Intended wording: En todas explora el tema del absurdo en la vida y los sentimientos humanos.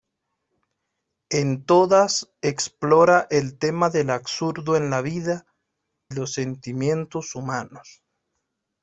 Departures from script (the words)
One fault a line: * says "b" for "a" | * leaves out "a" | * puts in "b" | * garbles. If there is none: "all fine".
* leaves out "y"